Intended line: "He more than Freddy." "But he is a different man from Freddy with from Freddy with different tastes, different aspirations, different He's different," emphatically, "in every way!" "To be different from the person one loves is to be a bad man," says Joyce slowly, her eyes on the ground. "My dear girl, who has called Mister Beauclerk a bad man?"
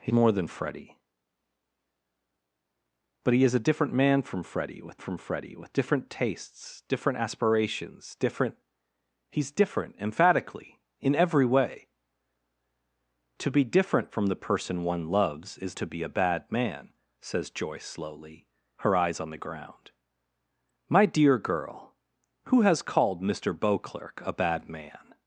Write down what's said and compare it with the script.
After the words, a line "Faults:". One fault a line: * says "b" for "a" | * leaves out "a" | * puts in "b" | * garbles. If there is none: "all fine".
"He more than Freddy." "But he is a different man from Freddy with from Freddy with different tastes, different aspirations, different He's different," emphatically, "in every way!" "To be different from the person one loves is to be a bad man," says Joyce slowly, her eyes on the ground. "My dear girl, who has called Mister Beauclerk a bad man?"
Faults:
all fine